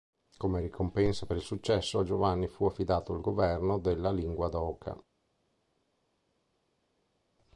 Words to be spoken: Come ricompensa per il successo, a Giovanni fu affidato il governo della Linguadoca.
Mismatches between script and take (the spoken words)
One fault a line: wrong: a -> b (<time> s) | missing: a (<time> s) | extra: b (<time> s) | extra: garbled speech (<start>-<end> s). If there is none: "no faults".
no faults